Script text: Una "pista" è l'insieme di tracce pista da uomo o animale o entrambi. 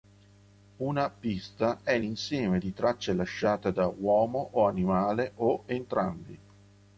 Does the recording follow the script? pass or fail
fail